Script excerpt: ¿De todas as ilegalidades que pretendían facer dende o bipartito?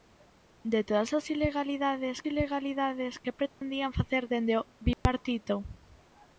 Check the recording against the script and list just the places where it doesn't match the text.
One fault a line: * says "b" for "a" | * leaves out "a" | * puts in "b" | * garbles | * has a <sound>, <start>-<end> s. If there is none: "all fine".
* puts in "ilegalidades"
* has a dropout, 3.5-3.6 s
* has a dropout, 4.9-5.1 s